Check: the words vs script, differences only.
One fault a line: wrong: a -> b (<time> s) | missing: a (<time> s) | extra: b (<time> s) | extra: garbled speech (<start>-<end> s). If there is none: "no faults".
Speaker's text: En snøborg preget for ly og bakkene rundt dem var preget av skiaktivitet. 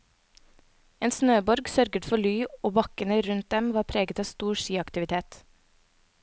wrong: preget -> sørget (1.7 s)
extra: stor (4.3 s)